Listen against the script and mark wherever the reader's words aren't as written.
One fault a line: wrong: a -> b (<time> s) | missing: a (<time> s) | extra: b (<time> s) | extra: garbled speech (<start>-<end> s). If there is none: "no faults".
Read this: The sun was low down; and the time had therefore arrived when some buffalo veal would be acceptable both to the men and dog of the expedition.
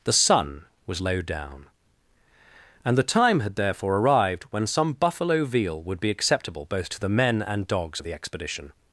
wrong: dog -> dogs (7.7 s)